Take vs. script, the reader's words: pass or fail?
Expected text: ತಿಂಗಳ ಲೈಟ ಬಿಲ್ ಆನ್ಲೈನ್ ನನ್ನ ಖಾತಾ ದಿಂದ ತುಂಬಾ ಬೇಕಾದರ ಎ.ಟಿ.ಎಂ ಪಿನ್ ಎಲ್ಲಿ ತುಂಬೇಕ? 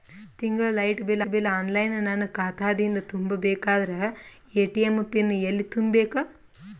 fail